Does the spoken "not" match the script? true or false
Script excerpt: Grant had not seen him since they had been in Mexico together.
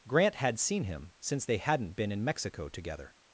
false